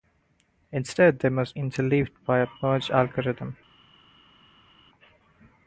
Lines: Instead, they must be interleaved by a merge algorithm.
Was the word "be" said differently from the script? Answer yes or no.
yes